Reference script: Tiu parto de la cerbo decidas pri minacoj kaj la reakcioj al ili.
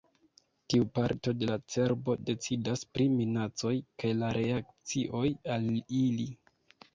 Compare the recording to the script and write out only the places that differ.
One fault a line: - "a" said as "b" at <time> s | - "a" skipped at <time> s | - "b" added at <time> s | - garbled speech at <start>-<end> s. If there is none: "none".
none